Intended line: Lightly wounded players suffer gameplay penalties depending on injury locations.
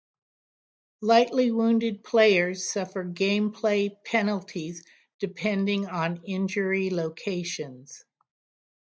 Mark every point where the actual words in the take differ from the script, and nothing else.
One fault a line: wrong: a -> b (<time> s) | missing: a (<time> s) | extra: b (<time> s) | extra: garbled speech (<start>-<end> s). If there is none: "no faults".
no faults